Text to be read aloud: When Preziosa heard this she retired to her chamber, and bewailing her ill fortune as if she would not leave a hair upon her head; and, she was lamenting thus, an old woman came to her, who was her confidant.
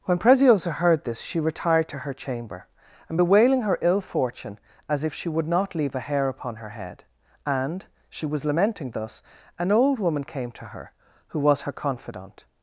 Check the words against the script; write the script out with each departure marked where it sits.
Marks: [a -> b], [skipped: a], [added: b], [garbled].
When Preziosa heard this she retired to her chamber, and bewailing her ill fortune as if she would not leave a hair upon her head; and, she was lamenting thus, an old woman came to her, who was her confidant.